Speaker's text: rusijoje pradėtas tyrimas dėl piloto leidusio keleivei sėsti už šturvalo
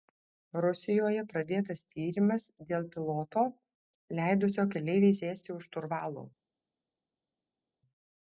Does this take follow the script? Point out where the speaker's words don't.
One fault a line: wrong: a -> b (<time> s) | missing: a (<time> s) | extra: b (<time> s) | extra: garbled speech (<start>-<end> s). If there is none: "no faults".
no faults